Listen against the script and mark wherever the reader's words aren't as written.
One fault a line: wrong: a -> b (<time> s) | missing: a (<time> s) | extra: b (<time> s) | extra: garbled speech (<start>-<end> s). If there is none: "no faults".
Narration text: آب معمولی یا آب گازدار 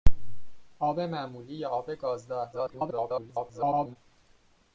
extra: garbled speech (2.5-4.0 s)